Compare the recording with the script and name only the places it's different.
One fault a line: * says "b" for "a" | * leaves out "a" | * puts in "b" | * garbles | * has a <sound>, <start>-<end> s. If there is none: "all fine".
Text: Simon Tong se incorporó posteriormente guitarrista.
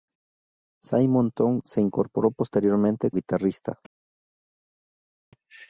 all fine